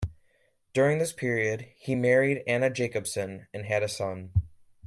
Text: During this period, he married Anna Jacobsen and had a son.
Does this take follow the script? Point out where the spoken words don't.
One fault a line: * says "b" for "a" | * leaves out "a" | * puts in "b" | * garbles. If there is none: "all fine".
all fine